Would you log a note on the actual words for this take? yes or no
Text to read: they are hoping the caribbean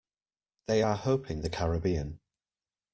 no